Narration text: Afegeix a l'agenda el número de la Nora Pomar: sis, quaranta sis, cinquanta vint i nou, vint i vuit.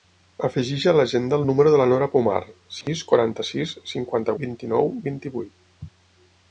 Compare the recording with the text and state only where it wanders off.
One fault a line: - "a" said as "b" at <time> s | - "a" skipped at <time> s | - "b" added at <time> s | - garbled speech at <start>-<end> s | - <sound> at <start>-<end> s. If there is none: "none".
- dropout at 2.8-2.9 s